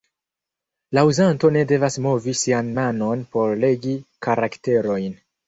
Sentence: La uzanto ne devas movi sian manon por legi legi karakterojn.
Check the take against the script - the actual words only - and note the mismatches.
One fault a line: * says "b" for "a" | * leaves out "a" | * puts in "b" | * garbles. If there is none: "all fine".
* leaves out "legi"